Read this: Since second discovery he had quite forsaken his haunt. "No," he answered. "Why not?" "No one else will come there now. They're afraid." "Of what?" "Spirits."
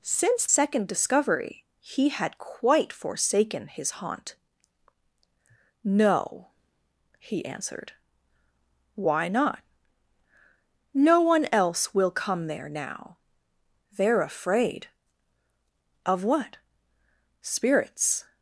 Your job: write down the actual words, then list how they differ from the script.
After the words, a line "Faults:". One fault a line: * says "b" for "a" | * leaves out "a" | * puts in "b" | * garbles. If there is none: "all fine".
Since second discovery he had quite forsaken his haunt. "No," he answered. "Why not?" "No one else will come there now. They're afraid." "Of what?" "Spirits."
Faults:
all fine